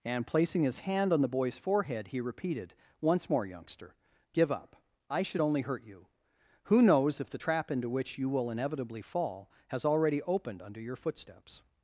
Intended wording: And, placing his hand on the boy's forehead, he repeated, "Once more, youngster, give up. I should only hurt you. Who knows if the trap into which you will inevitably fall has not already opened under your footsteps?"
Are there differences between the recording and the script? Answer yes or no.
yes